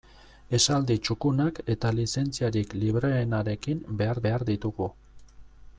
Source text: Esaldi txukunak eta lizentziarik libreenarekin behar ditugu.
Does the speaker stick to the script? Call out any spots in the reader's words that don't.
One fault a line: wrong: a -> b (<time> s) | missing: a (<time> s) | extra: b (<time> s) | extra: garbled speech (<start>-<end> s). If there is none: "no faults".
extra: behar (4.3 s)